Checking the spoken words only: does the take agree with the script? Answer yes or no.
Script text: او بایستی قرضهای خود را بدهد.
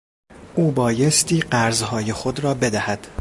yes